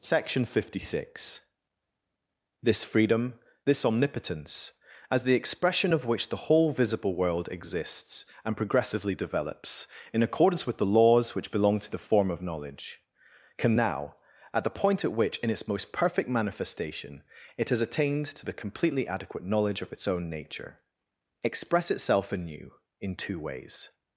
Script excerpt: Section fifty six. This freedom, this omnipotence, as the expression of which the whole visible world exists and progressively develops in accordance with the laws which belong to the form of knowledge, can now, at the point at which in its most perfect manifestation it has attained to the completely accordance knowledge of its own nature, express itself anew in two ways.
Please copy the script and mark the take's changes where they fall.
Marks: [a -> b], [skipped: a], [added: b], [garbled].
Section fifty six. This freedom, this omnipotence, as the expression of which the whole visible world exists and progressively develops in accordance with the laws which belong to the form of knowledge, can now, at the point at which in its most perfect manifestation it has attained to the completely [accordance -> adequate] knowledge of its own nature, express itself anew in two ways.